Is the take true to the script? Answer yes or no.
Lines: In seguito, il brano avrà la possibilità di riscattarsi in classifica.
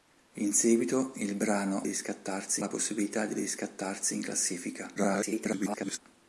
no